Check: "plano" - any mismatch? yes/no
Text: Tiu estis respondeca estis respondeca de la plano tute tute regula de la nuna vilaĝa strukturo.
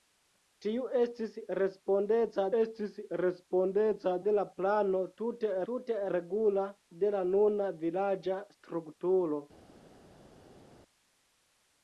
no